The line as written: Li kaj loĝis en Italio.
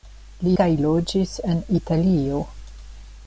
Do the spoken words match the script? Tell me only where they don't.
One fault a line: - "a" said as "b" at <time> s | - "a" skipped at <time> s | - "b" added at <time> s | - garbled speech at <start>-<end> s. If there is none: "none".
none